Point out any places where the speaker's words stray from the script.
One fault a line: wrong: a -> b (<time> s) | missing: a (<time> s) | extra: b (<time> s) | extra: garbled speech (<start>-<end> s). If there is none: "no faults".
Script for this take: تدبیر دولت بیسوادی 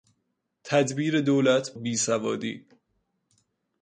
no faults